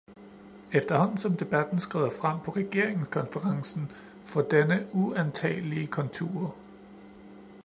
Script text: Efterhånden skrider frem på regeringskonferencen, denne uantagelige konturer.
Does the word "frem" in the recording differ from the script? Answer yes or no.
no